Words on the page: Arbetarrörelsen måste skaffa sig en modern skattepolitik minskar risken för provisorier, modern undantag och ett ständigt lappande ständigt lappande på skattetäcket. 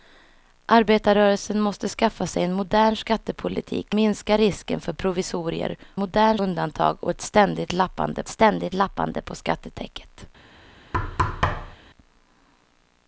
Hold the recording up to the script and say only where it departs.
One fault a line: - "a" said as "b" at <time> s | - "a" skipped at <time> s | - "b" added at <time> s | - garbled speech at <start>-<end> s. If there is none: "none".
none